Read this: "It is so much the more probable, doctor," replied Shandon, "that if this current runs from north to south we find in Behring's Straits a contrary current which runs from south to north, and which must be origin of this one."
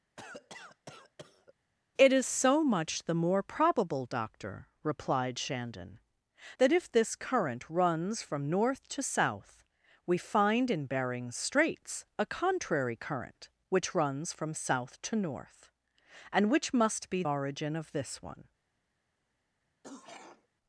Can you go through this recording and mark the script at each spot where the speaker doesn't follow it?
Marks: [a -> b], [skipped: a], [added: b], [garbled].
"It is so much the more probable, doctor," replied Shandon, "that if this current runs from north to south we find in Behring's Straits a contrary current which runs from south to north, and which must be origin of this one."